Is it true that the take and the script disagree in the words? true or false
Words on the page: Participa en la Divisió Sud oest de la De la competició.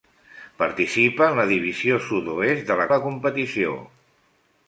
false